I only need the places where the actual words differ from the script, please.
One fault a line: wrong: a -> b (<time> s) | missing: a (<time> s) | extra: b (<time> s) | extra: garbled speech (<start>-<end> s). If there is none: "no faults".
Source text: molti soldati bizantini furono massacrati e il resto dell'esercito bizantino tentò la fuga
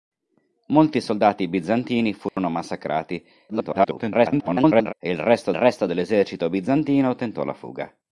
extra: garbled speech (3.5-4.9 s)
extra: resto (5.5 s)